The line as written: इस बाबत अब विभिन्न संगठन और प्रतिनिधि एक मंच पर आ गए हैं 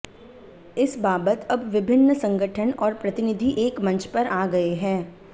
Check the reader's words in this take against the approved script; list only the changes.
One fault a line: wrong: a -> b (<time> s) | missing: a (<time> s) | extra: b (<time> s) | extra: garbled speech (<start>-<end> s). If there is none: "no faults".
no faults